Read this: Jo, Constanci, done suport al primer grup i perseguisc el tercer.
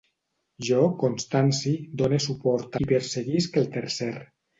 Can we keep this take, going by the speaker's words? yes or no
no